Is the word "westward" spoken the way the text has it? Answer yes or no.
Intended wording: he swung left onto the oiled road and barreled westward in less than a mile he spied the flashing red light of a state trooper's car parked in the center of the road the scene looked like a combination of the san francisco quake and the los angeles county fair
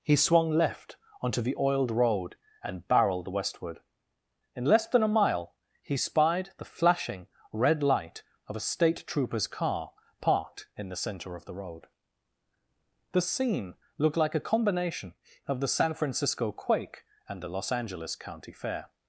yes